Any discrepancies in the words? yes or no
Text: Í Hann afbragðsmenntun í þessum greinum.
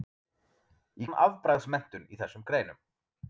no